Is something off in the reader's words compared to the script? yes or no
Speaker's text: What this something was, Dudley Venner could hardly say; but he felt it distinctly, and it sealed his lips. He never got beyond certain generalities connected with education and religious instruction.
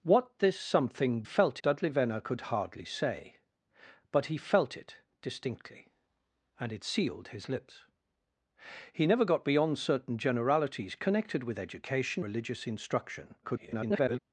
yes